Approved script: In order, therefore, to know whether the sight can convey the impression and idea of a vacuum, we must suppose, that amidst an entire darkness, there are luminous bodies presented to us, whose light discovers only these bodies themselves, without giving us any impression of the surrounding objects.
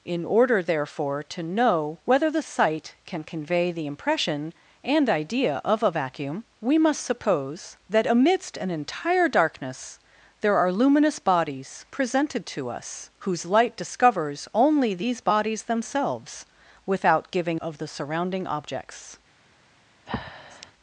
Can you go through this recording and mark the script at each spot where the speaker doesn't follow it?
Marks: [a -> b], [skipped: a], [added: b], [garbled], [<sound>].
In order, therefore, to know whether the sight can convey the impression and idea of a vacuum, we must suppose, that amidst an entire darkness, there are luminous bodies presented to us, whose light discovers only these bodies themselves, without giving [skipped: us any impression] of the surrounding objects. [breath]